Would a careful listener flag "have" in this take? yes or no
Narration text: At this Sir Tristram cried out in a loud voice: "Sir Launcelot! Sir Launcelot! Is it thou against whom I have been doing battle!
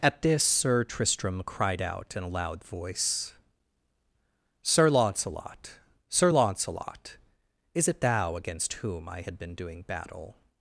yes